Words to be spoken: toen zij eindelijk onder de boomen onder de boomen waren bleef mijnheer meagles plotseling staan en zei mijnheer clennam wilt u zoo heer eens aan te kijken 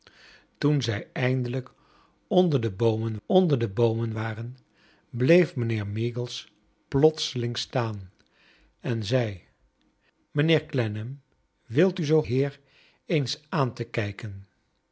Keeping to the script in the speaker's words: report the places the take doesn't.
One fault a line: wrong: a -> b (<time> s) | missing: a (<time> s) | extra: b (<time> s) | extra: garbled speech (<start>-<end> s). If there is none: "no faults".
no faults